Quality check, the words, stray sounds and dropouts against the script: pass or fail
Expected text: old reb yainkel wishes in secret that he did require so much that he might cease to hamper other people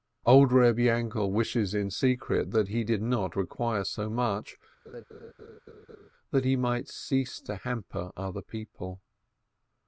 fail